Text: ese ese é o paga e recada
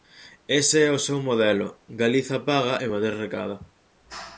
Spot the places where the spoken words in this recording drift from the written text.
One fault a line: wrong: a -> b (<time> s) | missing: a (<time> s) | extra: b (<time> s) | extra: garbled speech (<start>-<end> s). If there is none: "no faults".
missing: ese (0.8 s)
extra: seu modelo galiza (1.1 s)
extra: madrid (2.9 s)